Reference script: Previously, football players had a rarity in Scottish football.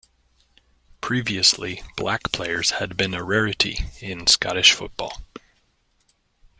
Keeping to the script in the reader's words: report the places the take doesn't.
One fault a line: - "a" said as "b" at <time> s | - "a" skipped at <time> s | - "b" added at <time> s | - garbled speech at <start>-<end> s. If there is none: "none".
- "football" said as "black" at 1.9 s
- "been" added at 3.0 s